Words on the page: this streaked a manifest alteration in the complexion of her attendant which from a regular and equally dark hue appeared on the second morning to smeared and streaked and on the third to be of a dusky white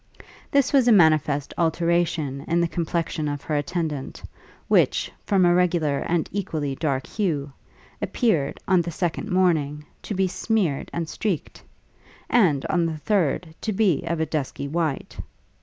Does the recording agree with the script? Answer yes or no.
no